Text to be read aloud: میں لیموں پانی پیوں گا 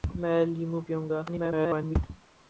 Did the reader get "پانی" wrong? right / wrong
wrong